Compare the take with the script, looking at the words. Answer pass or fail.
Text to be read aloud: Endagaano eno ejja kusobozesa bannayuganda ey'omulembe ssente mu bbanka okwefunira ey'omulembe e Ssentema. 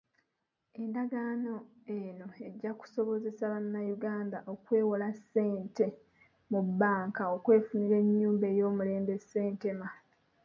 fail